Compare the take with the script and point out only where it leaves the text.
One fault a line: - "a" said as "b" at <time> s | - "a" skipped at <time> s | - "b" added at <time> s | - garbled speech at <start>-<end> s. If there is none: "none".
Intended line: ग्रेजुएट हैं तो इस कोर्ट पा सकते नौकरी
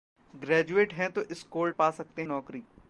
none